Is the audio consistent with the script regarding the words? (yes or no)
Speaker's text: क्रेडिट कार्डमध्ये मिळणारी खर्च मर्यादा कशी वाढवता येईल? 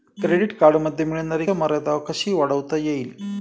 no